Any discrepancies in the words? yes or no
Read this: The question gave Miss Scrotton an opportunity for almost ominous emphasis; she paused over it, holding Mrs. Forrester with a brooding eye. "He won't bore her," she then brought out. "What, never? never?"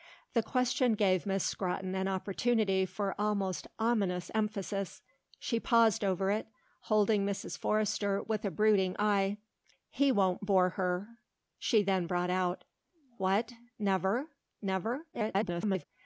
yes